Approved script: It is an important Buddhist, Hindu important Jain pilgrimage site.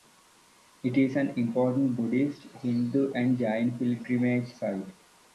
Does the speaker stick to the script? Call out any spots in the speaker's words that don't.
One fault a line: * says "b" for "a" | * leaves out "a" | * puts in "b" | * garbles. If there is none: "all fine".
* says "and" for "important"